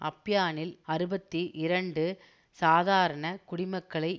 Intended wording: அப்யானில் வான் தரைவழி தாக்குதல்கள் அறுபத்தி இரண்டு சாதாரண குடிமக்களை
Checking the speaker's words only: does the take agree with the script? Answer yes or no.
no